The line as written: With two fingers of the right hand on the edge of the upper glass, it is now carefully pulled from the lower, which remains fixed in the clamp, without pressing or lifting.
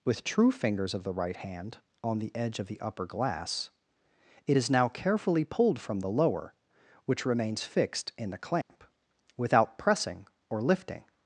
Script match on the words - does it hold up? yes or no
no